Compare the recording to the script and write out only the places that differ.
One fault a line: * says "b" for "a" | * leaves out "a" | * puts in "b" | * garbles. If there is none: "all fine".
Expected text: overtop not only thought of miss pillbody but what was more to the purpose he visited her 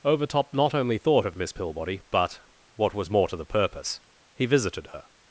all fine